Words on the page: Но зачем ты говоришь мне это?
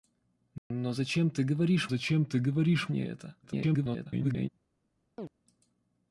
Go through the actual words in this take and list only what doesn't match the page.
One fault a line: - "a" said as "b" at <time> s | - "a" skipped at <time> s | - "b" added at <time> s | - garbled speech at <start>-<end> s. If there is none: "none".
- "зачем ты говоришь" added at 1.9 s
- garbled speech at 3.4-4.5 s